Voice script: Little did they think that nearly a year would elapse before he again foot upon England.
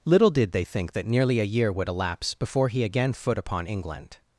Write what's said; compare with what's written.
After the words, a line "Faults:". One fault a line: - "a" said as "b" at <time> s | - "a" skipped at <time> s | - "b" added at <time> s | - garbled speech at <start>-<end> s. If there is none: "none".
Little did they think that nearly a year would elapse before he again foot upon England.
Faults:
none